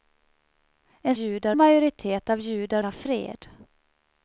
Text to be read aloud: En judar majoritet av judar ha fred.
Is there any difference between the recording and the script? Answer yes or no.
no